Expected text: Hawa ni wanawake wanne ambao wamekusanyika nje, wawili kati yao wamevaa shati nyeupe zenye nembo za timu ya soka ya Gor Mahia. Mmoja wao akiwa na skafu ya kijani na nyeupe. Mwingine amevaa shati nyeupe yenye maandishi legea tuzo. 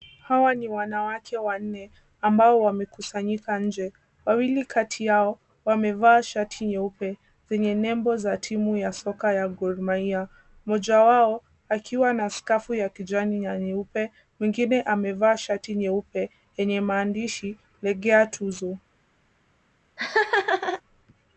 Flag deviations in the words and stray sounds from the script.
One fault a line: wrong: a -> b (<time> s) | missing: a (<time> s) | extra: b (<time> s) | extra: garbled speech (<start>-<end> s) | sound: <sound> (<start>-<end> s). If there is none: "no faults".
sound: laugh (20.0-20.8 s)